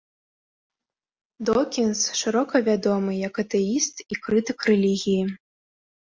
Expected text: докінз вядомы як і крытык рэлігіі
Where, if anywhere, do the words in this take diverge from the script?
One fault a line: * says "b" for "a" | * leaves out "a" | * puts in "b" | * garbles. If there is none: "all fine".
* puts in "шырока"
* puts in "атэіст"